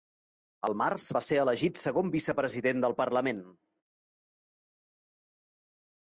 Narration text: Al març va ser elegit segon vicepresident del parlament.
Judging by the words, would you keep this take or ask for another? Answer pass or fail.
pass